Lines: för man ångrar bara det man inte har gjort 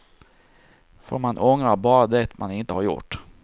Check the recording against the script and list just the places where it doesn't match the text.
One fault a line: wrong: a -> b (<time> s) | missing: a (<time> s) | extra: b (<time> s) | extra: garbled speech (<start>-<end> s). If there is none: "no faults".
no faults